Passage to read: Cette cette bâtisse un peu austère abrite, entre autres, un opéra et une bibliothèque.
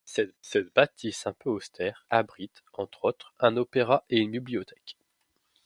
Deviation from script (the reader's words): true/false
false